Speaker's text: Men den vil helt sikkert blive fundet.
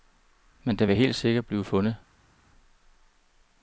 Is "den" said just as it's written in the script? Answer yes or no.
yes